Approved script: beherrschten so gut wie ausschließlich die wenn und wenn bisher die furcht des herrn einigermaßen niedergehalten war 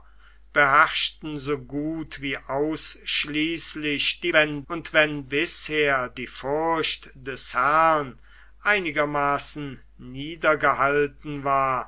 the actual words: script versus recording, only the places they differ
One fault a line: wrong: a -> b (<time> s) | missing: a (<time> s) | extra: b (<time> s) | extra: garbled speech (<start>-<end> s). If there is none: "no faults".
no faults